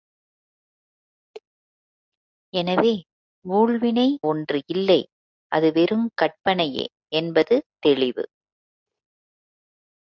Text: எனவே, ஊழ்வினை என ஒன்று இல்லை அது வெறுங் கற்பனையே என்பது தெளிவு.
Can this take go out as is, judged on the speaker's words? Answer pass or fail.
fail